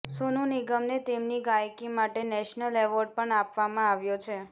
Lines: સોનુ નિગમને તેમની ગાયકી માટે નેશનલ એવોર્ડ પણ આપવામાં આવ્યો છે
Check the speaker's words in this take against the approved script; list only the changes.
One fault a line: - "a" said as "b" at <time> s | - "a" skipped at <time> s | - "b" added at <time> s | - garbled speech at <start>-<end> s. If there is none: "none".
none